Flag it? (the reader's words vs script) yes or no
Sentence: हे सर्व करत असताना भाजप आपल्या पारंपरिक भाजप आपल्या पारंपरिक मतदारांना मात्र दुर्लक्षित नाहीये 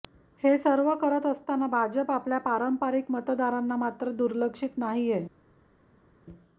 yes